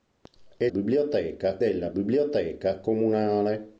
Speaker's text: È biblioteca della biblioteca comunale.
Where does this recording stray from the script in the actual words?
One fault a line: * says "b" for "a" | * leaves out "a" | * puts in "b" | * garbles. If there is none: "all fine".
all fine